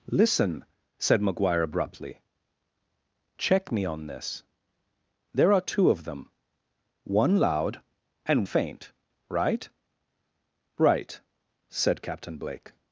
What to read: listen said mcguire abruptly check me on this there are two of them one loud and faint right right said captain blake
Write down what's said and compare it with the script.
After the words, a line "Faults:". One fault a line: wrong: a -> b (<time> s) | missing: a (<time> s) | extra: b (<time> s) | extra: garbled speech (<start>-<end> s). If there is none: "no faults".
listen said mcguire abruptly check me on this there are two of them one loud and faint right right said captain blake
Faults:
no faults